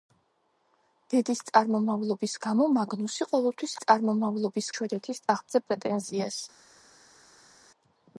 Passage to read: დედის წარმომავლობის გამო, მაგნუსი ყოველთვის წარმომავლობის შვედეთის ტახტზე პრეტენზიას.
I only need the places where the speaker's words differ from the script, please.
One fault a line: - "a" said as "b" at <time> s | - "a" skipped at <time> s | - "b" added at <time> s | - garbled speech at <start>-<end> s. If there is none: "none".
none